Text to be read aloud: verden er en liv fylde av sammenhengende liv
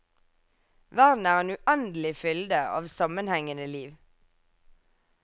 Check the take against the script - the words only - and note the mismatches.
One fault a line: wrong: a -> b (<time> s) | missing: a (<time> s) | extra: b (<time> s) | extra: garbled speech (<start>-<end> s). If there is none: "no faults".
wrong: liv -> uendelig (1.6 s)